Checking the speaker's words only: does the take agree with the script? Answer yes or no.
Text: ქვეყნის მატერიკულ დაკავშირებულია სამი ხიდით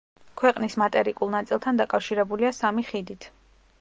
no